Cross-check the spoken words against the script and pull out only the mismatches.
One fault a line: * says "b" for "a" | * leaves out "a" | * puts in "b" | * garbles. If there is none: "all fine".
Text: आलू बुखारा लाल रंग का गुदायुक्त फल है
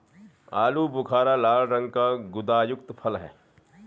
all fine